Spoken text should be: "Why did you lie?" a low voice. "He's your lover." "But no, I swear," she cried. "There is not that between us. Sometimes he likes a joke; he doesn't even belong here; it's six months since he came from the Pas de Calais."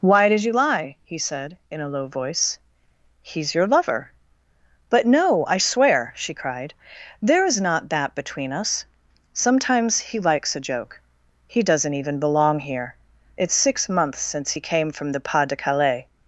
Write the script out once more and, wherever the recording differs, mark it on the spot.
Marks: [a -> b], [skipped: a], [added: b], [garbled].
"Why did you lie?" [added: he said in] a low voice. "He's your lover." "But no, I swear," she cried. "There is not that between us. Sometimes he likes a joke; he doesn't even belong here; it's six months since he came from the Pas de Calais."